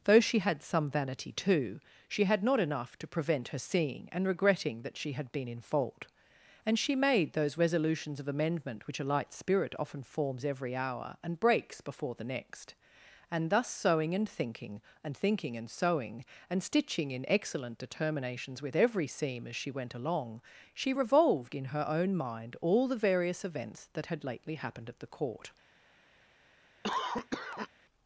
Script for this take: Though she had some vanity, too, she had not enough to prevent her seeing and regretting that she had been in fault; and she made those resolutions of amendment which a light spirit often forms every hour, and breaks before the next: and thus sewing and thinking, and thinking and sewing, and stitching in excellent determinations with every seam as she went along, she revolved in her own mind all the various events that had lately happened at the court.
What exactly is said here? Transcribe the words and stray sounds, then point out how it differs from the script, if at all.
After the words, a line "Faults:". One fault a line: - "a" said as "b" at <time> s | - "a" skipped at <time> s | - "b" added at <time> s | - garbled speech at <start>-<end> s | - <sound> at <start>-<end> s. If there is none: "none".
Though she had some vanity, too, she had not enough to prevent her seeing and regretting that she had been in fault; and she made those resolutions of amendment which a light spirit often forms every hour, and breaks before the next: and thus sewing and thinking, and thinking and sewing, and stitching in excellent determinations with every seam as she went along, she revolved in her own mind all the various events that had lately happened at the court.
Faults:
- cough at 26.8-27.7 s